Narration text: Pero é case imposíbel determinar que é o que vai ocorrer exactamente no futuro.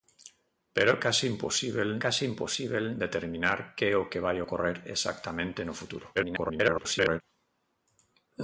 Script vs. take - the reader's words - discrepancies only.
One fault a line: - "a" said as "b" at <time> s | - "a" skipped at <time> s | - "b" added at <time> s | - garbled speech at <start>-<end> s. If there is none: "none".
- "case imposíbel" added at 2.0 s
- garbled speech at 6.1-7.2 s